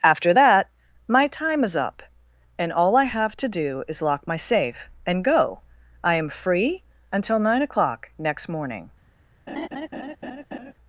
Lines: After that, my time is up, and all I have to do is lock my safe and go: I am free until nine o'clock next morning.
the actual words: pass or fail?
pass